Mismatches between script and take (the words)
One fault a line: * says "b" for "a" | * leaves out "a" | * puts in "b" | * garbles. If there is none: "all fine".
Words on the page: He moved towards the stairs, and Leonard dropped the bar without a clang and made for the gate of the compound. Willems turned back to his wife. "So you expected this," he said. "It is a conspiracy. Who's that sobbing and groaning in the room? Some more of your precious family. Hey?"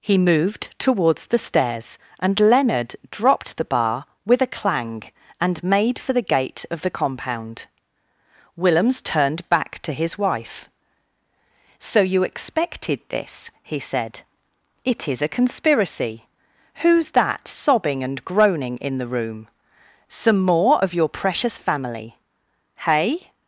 * says "with" for "without"